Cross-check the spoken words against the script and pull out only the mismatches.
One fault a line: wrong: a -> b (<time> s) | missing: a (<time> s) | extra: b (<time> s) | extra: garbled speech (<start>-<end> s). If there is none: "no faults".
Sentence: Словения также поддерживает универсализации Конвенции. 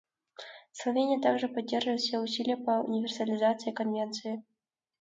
extra: все усилия по (2.0 s)